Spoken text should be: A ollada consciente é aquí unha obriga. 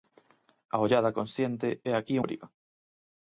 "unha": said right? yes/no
no